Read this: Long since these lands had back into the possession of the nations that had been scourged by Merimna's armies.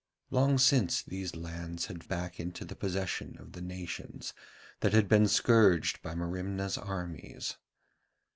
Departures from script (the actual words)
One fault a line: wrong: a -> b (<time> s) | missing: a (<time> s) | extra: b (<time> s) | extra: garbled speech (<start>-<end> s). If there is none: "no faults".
no faults